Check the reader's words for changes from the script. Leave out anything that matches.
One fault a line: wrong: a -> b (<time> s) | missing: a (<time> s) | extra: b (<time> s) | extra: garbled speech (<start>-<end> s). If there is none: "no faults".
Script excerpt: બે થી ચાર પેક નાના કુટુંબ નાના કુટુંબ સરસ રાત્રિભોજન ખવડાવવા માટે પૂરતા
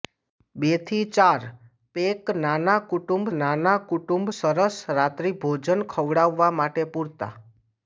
no faults